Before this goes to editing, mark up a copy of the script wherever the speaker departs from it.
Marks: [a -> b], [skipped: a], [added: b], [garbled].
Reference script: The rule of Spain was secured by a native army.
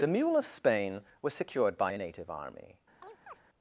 The [rule -> mule] of Spain was secured by a native army.